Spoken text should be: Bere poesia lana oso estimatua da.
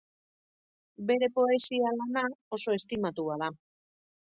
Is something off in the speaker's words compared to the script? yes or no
no